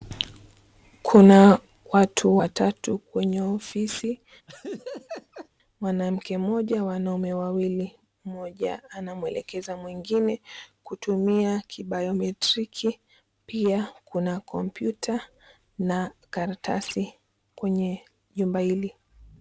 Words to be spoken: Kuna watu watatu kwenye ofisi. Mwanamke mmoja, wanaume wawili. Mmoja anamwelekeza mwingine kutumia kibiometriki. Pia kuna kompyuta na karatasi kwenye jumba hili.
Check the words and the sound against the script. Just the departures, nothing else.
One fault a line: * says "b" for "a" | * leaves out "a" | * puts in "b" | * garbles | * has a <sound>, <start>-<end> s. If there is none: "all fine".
* has a laugh, 4.5-5.5 s